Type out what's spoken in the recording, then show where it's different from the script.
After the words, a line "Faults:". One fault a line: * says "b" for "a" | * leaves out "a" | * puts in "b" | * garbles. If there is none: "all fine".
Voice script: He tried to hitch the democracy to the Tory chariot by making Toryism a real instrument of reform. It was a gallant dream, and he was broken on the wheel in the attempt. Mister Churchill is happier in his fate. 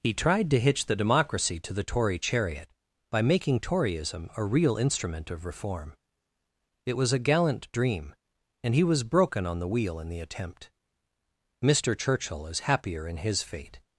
He tried to hitch the democracy to the Tory chariot by making Toryism a real instrument of reform. It was a gallant dream, and he was broken on the wheel in the attempt. Mister Churchill is happier in his fate.
Faults:
all fine